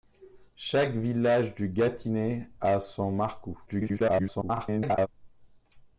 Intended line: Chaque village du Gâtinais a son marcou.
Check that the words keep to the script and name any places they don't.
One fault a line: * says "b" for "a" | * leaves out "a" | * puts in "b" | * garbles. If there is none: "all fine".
* garbles